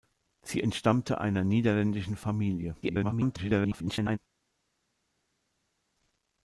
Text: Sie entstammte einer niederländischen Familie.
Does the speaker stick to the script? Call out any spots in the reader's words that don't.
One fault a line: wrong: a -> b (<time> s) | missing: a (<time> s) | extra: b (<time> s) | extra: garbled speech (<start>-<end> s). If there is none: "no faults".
extra: garbled speech (2.8-4.2 s)